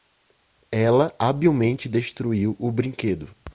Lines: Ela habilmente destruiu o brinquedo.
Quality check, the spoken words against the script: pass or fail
pass